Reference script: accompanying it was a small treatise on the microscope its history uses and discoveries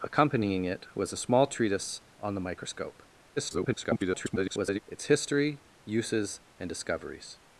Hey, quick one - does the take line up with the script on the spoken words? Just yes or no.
no